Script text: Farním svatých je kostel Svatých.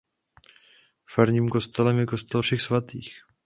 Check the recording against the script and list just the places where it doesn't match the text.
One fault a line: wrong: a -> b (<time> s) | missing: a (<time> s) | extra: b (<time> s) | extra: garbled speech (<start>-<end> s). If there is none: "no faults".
wrong: svatých -> kostelem (1.5 s)
extra: Všech (2.4 s)